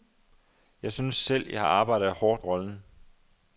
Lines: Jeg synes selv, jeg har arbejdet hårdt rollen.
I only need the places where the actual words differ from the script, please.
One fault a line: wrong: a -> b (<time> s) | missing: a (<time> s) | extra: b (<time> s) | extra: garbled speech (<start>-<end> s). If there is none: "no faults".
no faults